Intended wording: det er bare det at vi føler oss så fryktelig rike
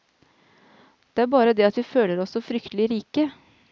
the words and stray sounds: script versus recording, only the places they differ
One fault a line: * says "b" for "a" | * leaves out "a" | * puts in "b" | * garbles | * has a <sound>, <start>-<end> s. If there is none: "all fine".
all fine